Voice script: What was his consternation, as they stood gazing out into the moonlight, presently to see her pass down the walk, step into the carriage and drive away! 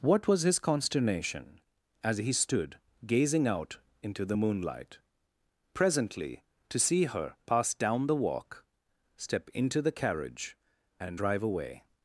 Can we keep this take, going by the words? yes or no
no